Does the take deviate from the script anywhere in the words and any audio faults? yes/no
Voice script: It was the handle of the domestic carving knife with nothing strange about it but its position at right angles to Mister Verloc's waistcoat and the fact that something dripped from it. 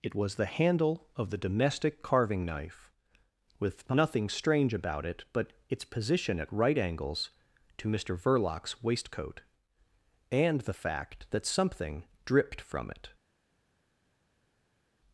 no